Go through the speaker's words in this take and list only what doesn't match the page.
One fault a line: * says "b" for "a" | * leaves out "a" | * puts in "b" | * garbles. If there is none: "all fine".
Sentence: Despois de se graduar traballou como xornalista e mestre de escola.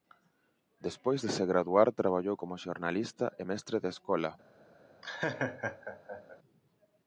all fine